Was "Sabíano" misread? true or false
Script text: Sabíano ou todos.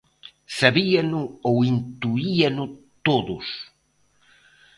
false